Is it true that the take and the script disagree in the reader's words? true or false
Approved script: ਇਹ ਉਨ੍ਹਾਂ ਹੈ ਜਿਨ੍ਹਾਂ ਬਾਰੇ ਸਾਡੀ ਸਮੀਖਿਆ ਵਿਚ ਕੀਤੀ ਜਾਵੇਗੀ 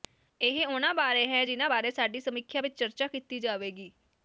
true